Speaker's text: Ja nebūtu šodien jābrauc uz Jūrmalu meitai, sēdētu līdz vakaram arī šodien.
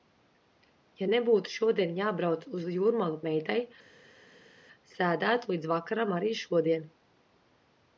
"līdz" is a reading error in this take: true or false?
false